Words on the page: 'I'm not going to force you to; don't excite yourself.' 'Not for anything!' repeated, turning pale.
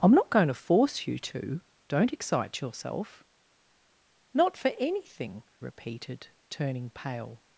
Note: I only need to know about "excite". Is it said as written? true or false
true